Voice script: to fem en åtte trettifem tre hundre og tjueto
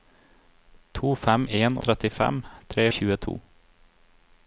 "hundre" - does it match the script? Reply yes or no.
no